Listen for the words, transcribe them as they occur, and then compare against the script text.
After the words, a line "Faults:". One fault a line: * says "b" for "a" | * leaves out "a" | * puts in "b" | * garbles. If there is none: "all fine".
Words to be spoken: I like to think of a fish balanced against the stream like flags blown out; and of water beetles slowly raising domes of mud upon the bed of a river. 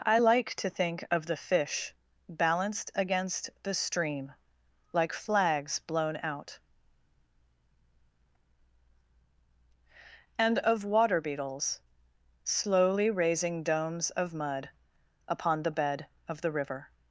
I like to think of the fish balanced against the stream like flags blown out; and of water beetles slowly raising domes of mud upon the bed of the river.
Faults:
* says "the" for "a"
* says "the" for "a"